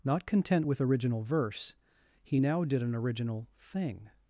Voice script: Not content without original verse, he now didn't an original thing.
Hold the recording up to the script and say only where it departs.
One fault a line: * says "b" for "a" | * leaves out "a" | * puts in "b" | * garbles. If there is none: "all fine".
* says "with" for "without"
* says "did" for "didn't"